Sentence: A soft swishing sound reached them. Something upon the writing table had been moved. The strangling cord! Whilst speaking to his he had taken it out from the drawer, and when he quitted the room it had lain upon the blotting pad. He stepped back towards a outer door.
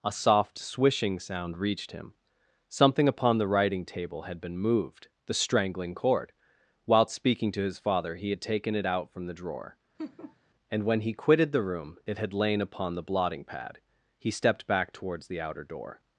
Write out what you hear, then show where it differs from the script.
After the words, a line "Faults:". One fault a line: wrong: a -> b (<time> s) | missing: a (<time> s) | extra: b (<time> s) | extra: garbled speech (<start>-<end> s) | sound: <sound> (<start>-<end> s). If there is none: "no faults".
A soft swishing sound reached him. Something upon the writing table had been moved. The strangling cord! Whilst speaking to his father he had taken it out from the drawer, and when he quitted the room it had lain upon the blotting pad. He stepped back towards the outer door.
Faults:
wrong: them -> him (1.9 s)
extra: father (7.8 s)
sound: laugh (10.0-10.4 s)
wrong: a -> the (15.3 s)